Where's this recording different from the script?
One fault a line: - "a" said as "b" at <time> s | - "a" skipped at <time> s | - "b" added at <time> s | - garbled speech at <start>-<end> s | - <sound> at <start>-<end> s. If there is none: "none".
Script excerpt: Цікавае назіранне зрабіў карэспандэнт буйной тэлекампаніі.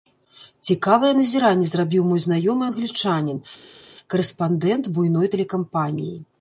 - "мой знаёмы англічанін" added at 2.1 s